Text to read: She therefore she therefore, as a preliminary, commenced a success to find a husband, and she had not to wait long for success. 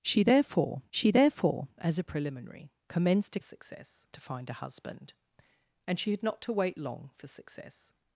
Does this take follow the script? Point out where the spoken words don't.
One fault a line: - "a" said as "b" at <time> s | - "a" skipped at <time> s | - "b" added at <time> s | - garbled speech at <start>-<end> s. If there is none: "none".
none